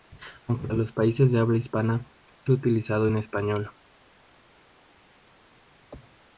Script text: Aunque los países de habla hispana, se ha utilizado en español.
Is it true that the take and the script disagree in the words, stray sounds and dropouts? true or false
false